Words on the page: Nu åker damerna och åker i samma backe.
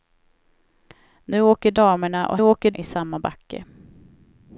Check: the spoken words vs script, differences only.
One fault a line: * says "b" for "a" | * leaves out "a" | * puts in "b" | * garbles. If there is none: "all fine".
all fine